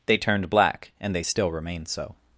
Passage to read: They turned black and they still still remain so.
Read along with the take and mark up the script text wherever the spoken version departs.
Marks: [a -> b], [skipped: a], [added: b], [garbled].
They turned black and they still [skipped: still] remain so.